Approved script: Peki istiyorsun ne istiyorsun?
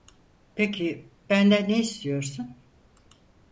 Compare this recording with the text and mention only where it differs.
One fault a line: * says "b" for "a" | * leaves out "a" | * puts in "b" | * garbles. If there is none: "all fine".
* says "benden" for "istiyorsun"